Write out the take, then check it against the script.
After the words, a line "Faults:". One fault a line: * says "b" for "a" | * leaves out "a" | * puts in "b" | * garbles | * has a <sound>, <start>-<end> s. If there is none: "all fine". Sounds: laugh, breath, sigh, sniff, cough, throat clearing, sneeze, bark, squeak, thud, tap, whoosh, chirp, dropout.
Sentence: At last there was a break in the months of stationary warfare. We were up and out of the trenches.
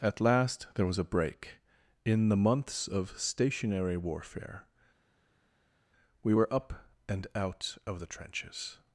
At last there was a break in the months of stationary warfare. We were up and out of the trenches.
Faults:
all fine